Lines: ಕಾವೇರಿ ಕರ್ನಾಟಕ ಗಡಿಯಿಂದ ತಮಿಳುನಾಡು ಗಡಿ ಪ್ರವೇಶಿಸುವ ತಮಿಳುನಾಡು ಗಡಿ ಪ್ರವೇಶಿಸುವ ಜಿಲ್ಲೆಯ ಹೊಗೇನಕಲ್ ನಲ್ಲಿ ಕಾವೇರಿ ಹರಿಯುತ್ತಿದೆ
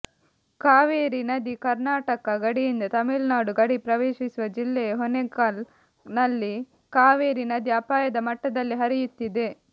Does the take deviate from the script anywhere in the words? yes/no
yes